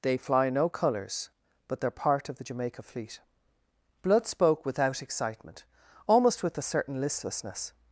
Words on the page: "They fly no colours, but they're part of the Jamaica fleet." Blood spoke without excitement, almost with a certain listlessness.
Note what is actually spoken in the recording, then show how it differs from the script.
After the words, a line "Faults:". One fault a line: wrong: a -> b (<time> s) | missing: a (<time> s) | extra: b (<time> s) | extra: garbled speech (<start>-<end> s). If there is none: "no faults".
"They fly no colours, but they're part of the Jamaica fleet." Blood spoke without excitement, almost with a certain listlessness.
Faults:
no faults